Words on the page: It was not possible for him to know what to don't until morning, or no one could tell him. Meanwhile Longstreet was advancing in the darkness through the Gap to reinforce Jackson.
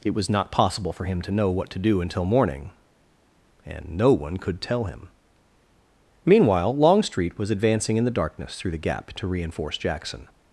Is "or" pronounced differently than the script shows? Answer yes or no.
yes